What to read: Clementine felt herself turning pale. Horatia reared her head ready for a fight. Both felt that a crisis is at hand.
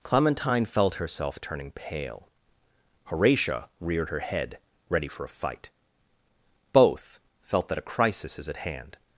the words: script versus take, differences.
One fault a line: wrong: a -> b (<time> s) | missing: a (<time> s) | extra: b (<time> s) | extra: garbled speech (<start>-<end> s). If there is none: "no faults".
no faults